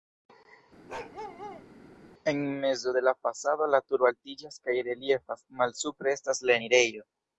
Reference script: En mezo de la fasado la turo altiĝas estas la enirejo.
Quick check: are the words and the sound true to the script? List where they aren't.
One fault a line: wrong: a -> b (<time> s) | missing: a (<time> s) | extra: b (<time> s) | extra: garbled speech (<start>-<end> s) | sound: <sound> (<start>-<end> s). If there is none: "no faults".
sound: bark (0.9-1.7 s)
extra: kaj reliefas malsupre (4.6 s)